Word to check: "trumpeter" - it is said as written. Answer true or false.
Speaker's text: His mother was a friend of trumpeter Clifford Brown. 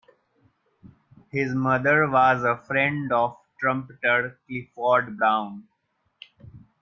true